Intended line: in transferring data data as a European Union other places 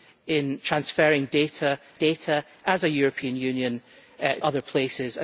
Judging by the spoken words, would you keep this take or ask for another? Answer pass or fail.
pass